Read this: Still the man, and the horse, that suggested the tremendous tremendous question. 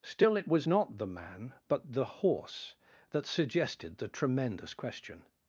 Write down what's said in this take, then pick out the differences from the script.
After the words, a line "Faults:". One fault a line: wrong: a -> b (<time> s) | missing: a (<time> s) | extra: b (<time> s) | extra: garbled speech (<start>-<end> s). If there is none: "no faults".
Still it was not the man, but the horse, that suggested the tremendous question.
Faults:
extra: it was not (0.3 s)
wrong: and -> but (1.7 s)
missing: tremendous (4.7 s)